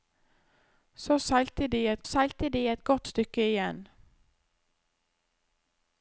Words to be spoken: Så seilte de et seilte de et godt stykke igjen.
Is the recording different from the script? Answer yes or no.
no